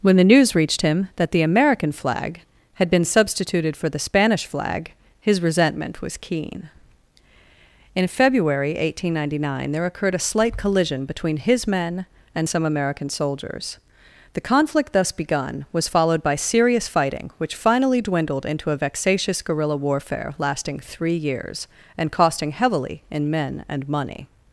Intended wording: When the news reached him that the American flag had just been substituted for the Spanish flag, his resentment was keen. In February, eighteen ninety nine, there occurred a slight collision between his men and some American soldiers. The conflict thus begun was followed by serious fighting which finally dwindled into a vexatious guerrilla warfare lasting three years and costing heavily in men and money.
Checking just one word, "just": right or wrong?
wrong